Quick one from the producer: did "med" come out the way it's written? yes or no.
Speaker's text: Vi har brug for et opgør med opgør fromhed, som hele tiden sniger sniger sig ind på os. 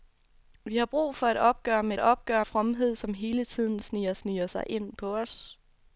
yes